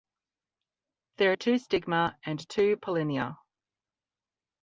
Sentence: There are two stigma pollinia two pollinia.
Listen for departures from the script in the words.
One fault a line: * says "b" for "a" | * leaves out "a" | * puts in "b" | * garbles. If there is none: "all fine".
* says "and" for "pollinia"